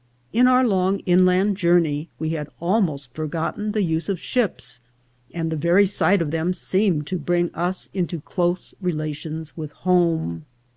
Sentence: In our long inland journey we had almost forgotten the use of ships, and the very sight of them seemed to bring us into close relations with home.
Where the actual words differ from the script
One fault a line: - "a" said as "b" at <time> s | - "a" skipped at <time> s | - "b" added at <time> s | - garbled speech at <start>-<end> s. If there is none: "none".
none